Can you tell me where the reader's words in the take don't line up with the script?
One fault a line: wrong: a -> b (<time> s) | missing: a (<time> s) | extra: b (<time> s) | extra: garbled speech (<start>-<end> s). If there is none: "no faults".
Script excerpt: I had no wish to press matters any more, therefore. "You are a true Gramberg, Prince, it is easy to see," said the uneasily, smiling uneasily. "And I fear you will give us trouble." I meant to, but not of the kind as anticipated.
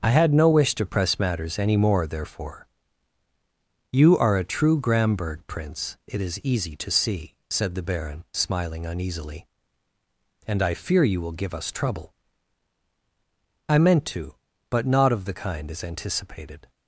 wrong: uneasily -> baron (7.8 s)